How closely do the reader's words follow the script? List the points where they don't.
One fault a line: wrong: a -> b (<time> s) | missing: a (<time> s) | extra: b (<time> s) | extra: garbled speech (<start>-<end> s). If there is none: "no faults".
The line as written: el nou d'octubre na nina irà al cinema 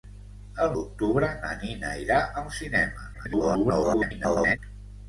missing: nou (0.7 s)
extra: garbled speech (3.1-4.6 s)